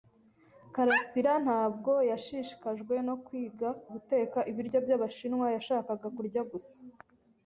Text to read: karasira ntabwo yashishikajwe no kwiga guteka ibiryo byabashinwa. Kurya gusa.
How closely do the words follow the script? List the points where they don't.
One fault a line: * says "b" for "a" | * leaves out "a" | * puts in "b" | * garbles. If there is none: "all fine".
* puts in "Yashakaga"